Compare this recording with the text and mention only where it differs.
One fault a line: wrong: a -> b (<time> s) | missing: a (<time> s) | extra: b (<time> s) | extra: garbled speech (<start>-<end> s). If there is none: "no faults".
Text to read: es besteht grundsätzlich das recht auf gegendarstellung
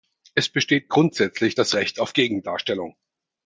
no faults